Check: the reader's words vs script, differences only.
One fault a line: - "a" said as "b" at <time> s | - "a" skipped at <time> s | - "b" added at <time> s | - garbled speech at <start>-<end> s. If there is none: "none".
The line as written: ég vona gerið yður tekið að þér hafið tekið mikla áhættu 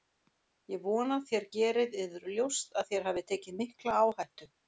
- "þér" added at 1.3 s
- "tekið" said as "ljóst" at 2.4 s